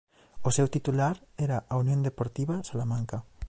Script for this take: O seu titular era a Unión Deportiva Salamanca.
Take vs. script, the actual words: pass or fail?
pass